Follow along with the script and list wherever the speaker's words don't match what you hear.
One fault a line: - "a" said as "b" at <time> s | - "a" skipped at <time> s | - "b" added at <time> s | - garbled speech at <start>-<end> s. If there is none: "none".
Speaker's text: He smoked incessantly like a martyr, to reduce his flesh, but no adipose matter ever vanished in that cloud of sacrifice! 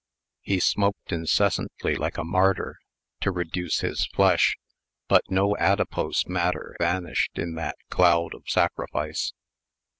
- "ever" skipped at 6.8 s